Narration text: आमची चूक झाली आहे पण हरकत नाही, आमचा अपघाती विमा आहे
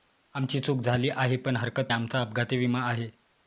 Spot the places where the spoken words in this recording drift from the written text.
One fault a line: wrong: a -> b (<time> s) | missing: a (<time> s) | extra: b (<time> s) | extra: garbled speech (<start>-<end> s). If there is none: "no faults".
missing: नाही (1.9 s)